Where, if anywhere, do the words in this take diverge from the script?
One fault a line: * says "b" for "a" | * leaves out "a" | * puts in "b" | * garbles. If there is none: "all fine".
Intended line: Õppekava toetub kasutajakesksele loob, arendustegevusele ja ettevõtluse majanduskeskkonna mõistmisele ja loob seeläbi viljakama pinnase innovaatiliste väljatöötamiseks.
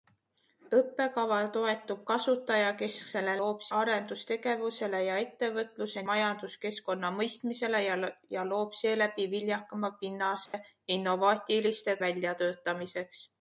all fine